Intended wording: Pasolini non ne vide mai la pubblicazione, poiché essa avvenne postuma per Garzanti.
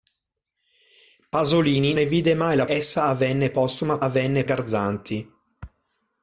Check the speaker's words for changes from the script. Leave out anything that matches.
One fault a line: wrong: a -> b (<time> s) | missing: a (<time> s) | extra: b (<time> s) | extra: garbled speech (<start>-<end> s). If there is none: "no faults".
missing: non (1.9 s)
missing: pubblicazione poiché (2.7 s)
wrong: per -> avvenne (4.0 s)